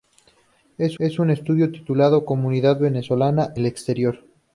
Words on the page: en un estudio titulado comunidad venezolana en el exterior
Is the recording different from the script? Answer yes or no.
yes